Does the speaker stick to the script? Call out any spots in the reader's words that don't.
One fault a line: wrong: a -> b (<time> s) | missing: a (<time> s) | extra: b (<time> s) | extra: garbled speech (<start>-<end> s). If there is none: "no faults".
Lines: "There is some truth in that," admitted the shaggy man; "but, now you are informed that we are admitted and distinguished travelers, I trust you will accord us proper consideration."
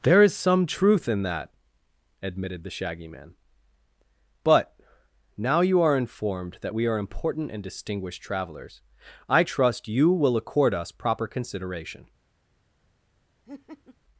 wrong: admitted -> important (7.0 s)